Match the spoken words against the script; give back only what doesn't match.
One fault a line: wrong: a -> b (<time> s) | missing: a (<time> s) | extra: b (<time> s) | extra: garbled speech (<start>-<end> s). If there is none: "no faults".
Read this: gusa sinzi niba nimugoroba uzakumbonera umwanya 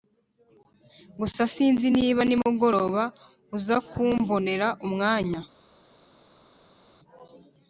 no faults